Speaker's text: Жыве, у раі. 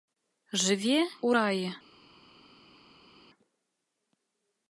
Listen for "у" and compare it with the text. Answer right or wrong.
right